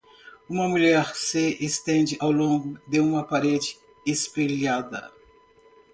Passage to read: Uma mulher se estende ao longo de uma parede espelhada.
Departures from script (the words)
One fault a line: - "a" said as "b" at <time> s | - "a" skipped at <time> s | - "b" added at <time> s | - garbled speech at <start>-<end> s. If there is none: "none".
none